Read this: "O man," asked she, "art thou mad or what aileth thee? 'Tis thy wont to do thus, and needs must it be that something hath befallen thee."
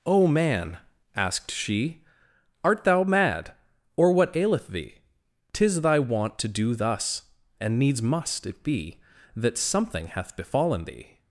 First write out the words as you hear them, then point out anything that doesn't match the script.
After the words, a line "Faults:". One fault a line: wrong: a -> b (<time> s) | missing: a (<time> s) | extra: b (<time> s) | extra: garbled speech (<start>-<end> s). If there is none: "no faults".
"O man," asked she, "art thou mad or what aileth thee? 'Tis thy wont to do thus, and needs must it be that something hath befallen thee."
Faults:
no faults